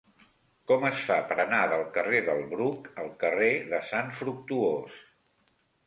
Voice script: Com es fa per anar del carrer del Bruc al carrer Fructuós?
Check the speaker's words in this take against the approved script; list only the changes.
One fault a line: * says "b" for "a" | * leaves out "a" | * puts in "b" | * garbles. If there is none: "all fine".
* puts in "de Sant"